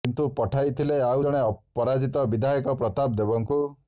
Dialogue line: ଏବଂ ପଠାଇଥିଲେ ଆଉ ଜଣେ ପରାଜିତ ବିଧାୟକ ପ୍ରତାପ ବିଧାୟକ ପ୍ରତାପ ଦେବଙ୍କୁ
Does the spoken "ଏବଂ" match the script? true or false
false